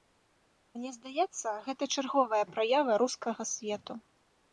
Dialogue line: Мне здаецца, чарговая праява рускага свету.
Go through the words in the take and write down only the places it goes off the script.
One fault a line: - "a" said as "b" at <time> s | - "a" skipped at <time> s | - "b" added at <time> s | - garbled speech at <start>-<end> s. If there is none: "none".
- "гэта" added at 1.7 s